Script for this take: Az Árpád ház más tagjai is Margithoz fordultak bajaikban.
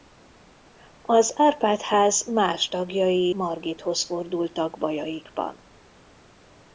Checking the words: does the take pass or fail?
fail